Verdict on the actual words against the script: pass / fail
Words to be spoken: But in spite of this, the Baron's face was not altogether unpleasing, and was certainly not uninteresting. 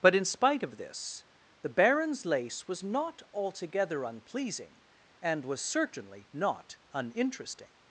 fail